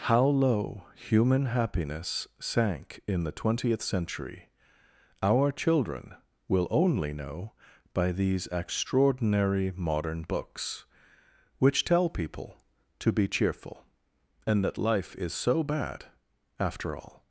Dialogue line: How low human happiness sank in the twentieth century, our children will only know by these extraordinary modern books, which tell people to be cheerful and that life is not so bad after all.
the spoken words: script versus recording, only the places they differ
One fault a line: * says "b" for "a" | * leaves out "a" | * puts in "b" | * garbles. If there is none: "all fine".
* leaves out "not"